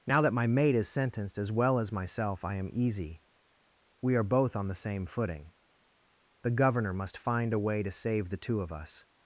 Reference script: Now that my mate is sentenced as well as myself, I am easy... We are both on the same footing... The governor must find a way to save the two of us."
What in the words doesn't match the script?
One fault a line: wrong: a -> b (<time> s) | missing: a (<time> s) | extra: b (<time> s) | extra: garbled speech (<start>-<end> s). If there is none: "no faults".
no faults